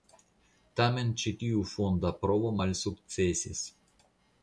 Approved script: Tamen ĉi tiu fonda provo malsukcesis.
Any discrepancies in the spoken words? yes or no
no